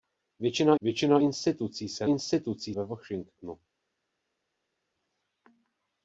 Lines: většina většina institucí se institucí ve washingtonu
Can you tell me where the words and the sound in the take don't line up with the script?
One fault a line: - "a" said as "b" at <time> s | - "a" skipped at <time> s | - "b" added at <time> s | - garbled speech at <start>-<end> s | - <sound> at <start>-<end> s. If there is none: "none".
none